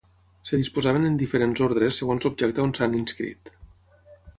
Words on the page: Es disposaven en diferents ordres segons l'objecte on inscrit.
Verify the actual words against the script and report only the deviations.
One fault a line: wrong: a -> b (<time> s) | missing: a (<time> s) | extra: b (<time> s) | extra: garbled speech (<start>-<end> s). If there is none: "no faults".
extra: s'han (2.8 s)